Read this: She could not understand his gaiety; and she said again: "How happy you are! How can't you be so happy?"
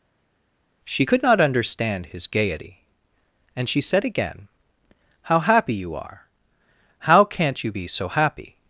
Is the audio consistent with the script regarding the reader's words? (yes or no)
yes